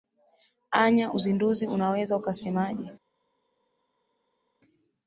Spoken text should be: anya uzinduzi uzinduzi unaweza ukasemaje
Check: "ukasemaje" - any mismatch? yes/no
no